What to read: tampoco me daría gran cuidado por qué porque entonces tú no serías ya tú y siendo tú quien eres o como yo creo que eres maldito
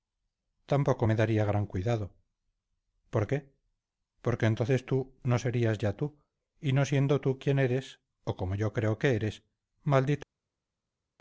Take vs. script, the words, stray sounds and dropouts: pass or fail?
fail